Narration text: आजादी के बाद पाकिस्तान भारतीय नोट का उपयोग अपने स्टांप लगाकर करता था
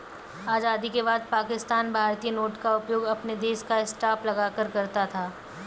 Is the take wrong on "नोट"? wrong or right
right